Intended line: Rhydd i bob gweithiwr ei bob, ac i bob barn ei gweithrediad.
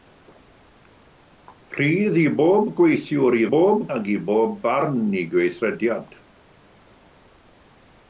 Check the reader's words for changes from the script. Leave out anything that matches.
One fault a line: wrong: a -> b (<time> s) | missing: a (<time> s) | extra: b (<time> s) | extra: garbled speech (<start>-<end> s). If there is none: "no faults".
no faults